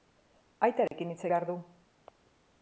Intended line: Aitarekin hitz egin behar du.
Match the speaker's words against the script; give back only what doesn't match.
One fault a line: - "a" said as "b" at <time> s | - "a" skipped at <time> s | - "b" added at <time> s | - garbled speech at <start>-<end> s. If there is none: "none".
- "egin" skipped at 1.2 s